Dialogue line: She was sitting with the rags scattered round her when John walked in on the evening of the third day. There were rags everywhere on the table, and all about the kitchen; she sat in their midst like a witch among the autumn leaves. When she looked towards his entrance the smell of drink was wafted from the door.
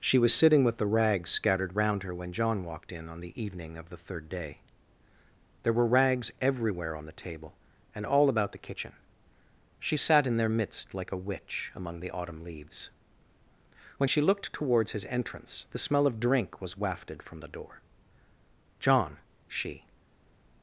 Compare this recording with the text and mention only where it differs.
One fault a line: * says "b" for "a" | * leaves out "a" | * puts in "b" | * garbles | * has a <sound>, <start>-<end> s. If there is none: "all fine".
* puts in "John she"